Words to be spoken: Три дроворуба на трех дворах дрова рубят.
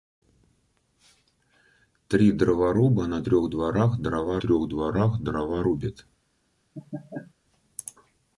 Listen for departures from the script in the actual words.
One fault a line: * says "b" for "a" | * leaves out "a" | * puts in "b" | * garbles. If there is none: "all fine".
* puts in "трех дворах дрова"